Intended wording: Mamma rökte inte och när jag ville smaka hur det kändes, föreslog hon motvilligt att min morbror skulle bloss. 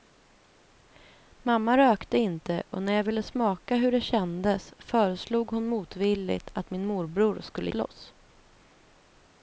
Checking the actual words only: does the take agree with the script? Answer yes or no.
yes